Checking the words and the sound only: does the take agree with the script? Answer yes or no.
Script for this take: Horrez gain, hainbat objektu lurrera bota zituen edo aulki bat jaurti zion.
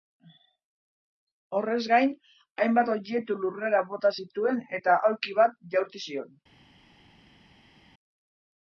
no